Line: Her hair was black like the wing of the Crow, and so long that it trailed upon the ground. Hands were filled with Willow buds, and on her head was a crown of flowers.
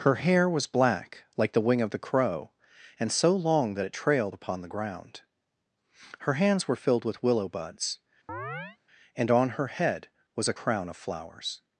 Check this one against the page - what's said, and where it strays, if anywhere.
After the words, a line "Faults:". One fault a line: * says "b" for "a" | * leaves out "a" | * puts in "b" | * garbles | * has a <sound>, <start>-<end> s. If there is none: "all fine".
Her hair was black like the wing of the Crow, and so long that it trailed upon the ground. Her hands were filled with Willow buds, and on her head was a crown of flowers.
Faults:
* puts in "Her"
* has a chirp, 8.3-8.8 s